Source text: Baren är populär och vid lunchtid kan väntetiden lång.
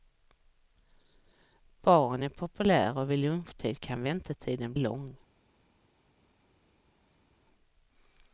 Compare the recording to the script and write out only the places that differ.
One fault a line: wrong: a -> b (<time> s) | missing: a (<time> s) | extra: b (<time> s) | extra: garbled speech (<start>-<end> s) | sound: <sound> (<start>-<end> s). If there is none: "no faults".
no faults